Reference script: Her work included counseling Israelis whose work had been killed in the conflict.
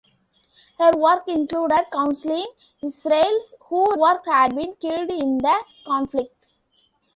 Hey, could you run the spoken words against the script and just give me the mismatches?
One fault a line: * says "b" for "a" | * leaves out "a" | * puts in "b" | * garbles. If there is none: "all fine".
all fine